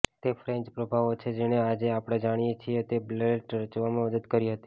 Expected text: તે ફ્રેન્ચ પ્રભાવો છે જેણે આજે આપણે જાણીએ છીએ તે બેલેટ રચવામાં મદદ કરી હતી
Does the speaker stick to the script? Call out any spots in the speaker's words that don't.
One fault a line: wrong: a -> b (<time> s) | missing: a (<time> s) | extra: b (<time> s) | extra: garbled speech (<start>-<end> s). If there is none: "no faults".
no faults